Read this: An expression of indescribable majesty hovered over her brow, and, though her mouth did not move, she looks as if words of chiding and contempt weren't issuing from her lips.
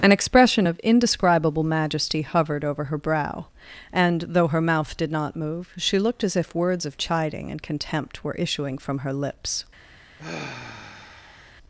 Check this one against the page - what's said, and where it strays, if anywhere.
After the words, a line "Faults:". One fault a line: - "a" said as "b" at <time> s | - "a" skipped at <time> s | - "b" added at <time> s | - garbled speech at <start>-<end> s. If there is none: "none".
An expression of indescribable majesty hovered over her brow, and, though her mouth did not move, she looked as if words of chiding and contempt were issuing from her lips.
Faults:
- "looks" said as "looked" at 6.0 s
- "weren't" said as "were" at 8.2 s